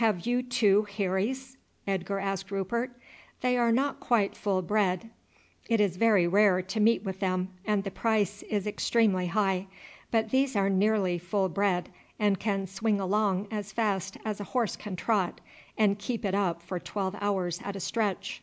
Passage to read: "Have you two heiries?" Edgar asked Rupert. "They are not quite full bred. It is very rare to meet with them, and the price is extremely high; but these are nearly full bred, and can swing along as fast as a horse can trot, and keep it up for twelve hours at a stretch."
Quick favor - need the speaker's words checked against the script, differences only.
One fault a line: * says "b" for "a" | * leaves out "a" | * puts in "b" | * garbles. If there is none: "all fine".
all fine